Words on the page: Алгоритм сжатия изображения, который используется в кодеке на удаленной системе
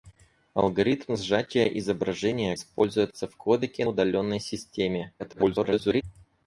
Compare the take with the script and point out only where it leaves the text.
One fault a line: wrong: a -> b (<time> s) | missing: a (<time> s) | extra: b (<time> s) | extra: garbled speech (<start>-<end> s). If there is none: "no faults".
missing: который (2.5 s)
missing: на (3.8 s)
extra: garbled speech (5.2-6.0 s)